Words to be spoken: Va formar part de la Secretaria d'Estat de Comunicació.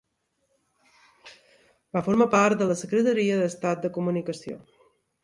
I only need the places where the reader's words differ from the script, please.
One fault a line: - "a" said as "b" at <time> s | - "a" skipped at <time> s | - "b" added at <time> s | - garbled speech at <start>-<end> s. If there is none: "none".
none